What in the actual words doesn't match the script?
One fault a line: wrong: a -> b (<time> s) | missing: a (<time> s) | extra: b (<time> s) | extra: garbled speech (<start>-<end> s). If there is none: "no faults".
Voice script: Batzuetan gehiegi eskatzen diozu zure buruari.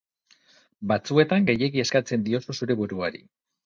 no faults